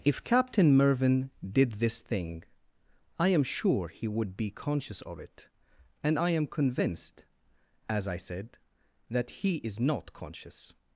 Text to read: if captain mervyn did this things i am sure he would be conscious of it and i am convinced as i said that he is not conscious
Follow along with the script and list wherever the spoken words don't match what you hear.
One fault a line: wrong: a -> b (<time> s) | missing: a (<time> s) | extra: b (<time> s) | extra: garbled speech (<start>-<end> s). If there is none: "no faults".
wrong: things -> thing (2.0 s)